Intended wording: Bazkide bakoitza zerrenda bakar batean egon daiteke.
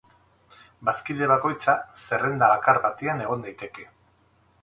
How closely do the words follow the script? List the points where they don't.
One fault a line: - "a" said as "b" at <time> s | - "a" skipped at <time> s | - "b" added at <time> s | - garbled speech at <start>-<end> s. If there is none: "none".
none